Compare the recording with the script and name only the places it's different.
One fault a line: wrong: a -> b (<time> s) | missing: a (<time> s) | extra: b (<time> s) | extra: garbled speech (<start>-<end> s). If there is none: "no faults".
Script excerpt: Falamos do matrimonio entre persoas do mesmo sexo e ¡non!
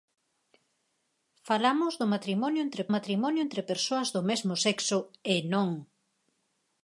extra: matrimonio entre (2.9 s)